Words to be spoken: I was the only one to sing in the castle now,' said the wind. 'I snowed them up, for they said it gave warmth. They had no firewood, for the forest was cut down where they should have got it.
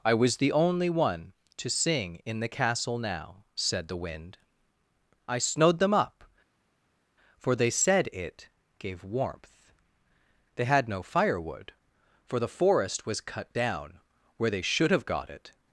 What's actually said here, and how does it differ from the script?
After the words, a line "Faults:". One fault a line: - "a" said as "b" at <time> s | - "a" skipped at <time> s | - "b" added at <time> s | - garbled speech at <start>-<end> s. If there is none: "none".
I was the only one to sing in the castle now,' said the wind. 'I snowed them up, for they said it gave warmth. They had no firewood, for the forest was cut down where they should have got it.
Faults:
none